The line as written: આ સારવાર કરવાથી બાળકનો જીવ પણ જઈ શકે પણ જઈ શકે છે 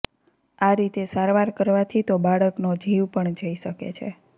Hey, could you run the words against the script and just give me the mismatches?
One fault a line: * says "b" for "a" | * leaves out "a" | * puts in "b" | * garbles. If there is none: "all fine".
* puts in "રીતે"
* puts in "તો"
* leaves out "પણ જઈ શકે"